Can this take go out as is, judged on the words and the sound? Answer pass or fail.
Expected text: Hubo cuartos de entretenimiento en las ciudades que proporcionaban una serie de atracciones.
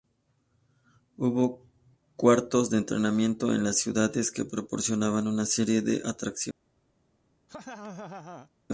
fail